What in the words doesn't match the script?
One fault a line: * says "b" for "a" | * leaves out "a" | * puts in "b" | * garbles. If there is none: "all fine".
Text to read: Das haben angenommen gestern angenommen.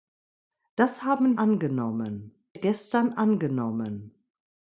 all fine